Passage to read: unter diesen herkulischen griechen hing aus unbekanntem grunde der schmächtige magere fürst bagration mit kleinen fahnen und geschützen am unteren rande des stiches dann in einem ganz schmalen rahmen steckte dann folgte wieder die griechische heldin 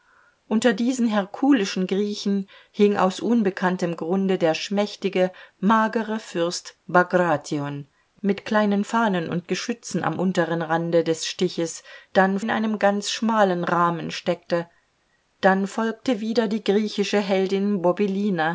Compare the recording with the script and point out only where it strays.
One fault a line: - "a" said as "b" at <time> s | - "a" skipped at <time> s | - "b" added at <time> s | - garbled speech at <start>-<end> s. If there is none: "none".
none